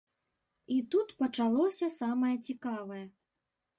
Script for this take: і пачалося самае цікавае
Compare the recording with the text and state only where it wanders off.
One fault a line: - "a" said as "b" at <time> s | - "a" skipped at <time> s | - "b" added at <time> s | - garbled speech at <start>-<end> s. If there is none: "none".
- "тут" added at 0.9 s